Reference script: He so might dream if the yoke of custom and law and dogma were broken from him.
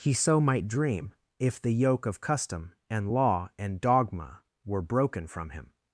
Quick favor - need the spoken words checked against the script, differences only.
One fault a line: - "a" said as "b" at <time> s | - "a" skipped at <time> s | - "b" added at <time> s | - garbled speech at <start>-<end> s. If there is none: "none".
none